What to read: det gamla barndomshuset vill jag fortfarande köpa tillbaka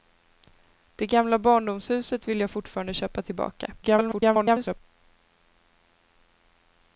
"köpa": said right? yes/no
yes